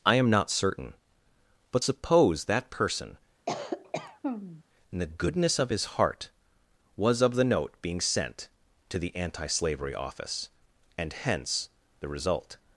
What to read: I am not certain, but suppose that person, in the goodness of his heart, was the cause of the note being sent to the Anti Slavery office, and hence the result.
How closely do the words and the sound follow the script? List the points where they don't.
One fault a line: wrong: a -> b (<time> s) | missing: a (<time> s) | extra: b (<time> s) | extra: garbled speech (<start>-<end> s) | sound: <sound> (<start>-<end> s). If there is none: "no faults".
sound: cough (3.5-4.6 s)
missing: the cause (7.2 s)